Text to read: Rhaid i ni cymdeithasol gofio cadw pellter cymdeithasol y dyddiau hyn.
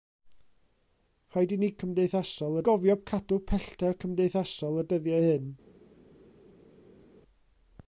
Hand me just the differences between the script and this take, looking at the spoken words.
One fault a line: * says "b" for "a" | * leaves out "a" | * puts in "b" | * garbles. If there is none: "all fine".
all fine